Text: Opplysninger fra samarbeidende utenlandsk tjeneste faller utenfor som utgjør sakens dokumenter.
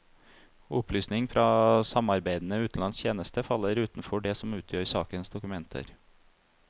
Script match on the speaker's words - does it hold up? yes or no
no